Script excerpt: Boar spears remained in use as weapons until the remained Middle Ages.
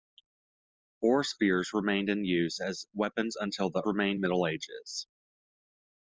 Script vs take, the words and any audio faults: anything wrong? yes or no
no